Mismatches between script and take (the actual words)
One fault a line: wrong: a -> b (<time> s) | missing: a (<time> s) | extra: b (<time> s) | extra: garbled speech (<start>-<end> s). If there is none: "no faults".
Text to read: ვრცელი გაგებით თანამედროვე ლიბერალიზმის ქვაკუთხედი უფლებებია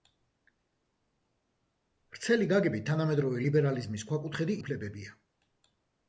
no faults